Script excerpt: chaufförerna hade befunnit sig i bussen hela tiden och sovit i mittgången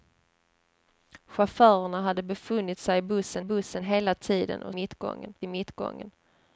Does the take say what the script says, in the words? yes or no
no